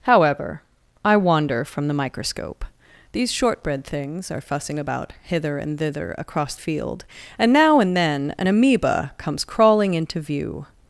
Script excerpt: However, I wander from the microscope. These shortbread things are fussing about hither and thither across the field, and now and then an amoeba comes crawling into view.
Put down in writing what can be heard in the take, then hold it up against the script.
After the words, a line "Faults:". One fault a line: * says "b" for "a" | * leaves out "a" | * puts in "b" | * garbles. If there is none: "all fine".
However, I wander from the microscope. These shortbread things are fussing about hither and thither across field, and now and then an amoeba comes crawling into view.
Faults:
* leaves out "the"